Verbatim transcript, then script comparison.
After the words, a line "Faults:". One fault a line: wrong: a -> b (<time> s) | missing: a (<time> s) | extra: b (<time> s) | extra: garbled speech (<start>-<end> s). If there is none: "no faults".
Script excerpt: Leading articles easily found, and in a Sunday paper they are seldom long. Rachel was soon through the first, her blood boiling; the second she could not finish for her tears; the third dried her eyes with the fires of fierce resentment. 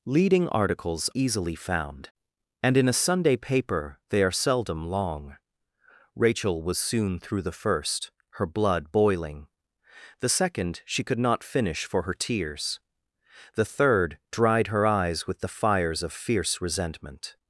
Leading articles easily found, and in a Sunday paper they are seldom long. Rachel was soon through the first, her blood boiling; the second she could not finish for her tears; the third dried her eyes with the fires of fierce resentment.
Faults:
no faults